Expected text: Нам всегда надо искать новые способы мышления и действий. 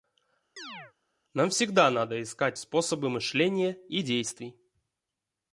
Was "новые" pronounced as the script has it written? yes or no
no